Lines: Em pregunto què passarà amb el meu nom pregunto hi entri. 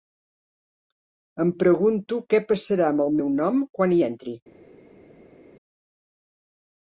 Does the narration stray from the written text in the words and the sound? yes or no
yes